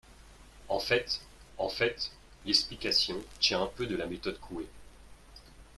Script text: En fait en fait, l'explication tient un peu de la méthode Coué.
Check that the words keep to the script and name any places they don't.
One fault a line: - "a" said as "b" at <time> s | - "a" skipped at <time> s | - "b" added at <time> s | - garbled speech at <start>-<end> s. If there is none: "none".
none